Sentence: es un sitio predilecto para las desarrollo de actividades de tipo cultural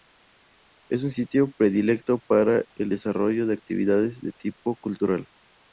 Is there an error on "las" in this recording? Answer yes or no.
yes